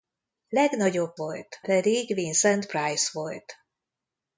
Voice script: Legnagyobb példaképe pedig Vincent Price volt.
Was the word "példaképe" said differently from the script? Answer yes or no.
yes